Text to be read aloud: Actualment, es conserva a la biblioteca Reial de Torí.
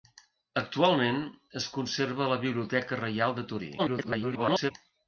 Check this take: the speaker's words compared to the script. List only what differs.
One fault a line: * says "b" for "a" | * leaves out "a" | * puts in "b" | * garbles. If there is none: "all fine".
* garbles